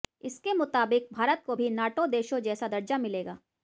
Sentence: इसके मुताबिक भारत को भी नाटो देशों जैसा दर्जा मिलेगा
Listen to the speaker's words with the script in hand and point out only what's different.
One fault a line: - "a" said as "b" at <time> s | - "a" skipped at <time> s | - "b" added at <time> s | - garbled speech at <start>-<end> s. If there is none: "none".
none